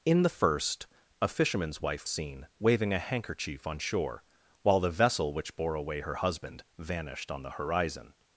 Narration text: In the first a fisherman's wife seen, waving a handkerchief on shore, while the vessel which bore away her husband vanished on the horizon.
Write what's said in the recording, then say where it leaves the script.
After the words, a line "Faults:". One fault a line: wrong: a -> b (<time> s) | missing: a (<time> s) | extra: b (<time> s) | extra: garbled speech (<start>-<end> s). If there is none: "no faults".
In the first a fisherman's wife seen, waving a handkerchief on shore, while the vessel which bore away her husband vanished on the horizon.
Faults:
no faults